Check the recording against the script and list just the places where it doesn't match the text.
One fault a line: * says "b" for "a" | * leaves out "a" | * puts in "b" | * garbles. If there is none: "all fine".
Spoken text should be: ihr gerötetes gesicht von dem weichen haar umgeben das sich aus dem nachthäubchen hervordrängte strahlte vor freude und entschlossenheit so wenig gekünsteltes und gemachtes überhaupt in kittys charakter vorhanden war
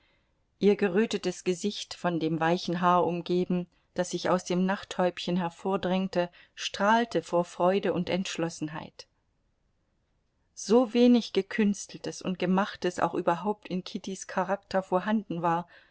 * puts in "auch"